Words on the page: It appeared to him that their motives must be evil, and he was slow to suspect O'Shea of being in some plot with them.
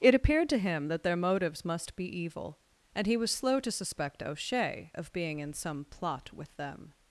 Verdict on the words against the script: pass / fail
pass